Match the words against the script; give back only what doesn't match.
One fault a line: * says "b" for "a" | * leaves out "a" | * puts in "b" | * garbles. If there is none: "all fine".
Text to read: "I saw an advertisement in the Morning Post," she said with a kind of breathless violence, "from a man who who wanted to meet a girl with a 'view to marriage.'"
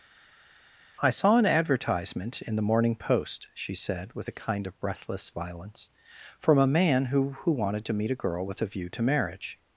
all fine